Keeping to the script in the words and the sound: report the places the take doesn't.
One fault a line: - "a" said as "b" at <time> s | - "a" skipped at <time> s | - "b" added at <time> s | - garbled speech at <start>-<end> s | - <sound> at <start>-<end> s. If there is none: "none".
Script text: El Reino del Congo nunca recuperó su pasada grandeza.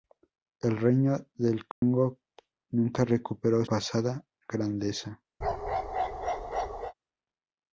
- dropout at 1.7-1.8 s
- "su" skipped at 3.6 s
- bark at 5.4-6.9 s